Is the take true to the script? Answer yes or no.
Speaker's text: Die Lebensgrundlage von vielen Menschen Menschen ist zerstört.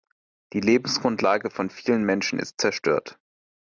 no